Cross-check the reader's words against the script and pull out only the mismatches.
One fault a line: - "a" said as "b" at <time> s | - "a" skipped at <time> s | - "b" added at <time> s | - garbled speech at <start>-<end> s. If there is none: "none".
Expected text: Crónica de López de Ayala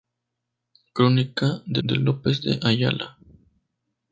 - "de" added at 1.8 s